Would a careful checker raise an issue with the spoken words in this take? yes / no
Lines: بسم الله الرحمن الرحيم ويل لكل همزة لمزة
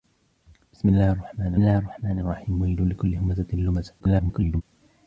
yes